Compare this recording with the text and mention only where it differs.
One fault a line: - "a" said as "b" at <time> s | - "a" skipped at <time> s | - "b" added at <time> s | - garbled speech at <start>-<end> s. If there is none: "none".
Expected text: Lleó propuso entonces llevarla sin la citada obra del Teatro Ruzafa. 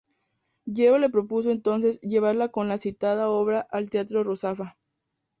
- "le" added at 1.0 s
- "sin" said as "con" at 2.5 s
- "del" said as "al" at 3.6 s